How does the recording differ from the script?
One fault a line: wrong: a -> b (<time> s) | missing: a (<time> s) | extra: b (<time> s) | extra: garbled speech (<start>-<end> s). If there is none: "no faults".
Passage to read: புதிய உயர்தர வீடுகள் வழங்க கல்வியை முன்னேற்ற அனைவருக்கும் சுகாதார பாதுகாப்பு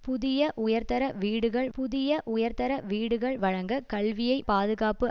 wrong: வழங்க கல்வியை முன்னேற்ற அனைவருக்கும் சுகாதார -> புதிய உயர்தர வீடுகள் வழங்க கல்வியை (1.7 s)